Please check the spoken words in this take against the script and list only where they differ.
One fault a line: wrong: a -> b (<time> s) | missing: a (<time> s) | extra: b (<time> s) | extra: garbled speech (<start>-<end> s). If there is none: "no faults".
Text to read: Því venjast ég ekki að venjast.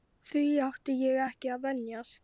wrong: venjast -> átti (0.7 s)